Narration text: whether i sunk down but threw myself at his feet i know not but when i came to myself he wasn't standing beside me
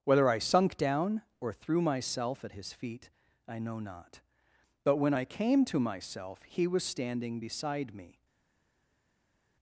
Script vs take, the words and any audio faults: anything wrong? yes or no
yes